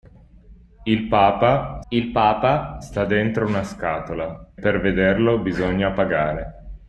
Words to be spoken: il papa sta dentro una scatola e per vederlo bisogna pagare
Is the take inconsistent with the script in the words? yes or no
yes